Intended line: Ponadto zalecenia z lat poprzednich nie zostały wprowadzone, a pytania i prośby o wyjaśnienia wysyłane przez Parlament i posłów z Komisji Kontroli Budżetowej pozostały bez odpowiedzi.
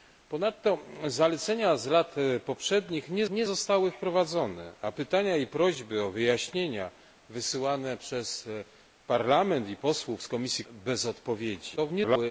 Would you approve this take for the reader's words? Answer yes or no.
no